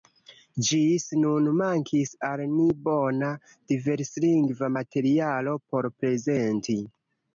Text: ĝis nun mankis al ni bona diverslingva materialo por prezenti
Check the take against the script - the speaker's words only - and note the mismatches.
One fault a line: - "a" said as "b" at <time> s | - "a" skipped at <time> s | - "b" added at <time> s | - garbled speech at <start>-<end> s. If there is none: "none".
none